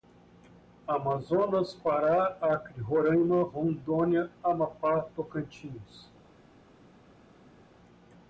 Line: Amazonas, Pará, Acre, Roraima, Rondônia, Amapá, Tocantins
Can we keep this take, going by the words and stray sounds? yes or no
yes